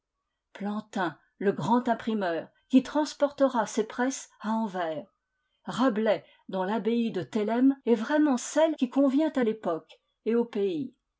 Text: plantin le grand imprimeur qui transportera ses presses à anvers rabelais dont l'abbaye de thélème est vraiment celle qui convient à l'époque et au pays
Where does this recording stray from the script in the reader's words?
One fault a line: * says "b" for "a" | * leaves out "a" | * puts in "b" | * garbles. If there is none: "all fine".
all fine